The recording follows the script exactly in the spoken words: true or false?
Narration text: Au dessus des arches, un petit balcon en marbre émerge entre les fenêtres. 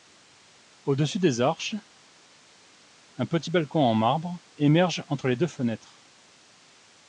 false